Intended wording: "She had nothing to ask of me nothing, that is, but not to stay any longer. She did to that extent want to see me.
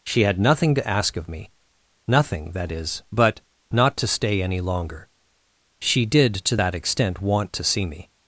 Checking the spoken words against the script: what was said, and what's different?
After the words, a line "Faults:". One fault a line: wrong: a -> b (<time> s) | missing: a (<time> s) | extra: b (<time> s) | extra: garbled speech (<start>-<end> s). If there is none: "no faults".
"She had nothing to ask of me nothing, that is, but not to stay any longer. She did to that extent want to see me.
Faults:
no faults